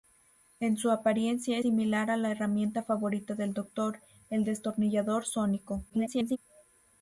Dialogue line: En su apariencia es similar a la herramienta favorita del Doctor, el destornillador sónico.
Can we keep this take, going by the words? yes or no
no